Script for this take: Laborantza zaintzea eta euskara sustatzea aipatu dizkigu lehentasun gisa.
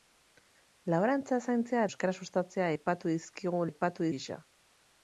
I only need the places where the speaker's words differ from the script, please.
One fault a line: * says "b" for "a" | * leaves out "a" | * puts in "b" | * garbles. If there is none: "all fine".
* leaves out "eta"
* says "aipatu" for "lehentasun"